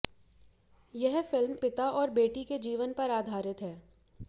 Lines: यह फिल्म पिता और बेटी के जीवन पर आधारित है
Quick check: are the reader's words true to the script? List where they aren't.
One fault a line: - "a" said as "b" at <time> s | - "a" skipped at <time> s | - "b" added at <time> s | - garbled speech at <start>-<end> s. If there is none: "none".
none